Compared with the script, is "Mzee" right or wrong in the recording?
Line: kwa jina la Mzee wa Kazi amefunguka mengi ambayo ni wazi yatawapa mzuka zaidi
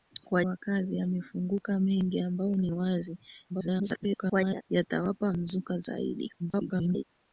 wrong